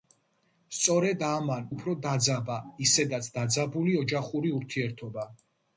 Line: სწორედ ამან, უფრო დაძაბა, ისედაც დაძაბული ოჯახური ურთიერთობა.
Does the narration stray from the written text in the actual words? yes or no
no